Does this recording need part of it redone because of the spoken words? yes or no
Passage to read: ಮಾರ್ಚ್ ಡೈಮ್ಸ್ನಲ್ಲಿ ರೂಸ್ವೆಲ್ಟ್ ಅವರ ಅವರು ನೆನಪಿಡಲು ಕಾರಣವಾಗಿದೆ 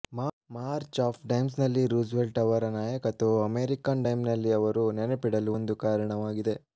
yes